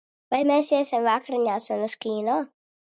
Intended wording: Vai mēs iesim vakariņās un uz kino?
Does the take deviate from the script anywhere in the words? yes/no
no